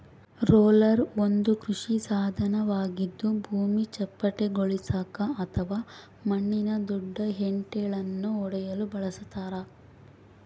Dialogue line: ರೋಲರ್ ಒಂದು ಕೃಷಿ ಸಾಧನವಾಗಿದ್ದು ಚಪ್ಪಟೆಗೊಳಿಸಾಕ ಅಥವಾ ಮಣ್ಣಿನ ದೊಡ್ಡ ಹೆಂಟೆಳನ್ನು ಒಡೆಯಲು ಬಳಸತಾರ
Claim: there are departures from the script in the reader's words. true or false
true